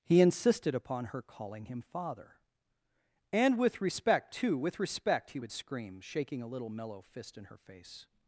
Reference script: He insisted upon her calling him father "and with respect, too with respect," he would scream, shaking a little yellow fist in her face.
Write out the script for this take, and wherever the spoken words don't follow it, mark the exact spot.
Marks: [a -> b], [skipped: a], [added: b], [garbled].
He insisted upon her calling him father "and with respect, too with respect," he would scream, shaking a little [yellow -> mellow] fist in her face.